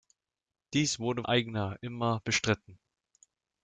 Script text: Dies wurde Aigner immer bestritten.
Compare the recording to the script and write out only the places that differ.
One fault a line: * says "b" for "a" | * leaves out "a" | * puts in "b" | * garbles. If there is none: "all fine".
all fine